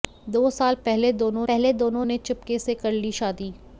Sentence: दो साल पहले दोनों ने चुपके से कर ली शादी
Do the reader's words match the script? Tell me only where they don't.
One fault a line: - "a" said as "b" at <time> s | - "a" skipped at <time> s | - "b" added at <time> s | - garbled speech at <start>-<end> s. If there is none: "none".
- "पहले दोनों" added at 1.5 s